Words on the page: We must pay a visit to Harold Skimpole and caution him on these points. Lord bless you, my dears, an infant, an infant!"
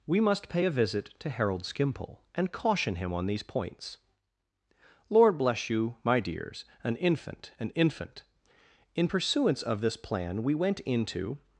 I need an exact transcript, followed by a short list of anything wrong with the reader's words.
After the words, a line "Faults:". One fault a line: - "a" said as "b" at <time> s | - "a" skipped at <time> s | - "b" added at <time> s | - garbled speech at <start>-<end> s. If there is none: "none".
We must pay a visit to Harold Skimpole and caution him on these points. Lord bless you, my dears, an infant, an infant!" In pursuance of this plan, we went into
Faults:
- "In pursuance of this plan we went into" added at 8.9 s